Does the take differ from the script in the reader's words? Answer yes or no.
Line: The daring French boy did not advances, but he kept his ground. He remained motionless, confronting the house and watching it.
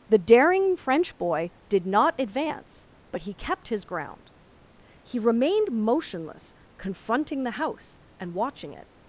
yes